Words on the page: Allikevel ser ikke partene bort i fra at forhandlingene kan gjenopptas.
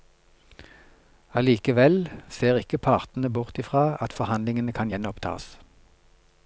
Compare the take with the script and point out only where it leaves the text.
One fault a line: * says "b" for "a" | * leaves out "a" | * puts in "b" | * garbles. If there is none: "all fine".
all fine